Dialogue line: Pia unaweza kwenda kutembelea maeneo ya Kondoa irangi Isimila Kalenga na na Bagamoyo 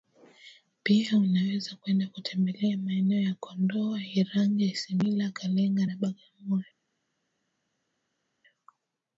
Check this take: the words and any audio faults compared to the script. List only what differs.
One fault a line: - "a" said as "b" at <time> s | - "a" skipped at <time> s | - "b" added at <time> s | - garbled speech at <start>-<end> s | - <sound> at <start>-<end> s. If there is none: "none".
- "na" skipped at 6.0 s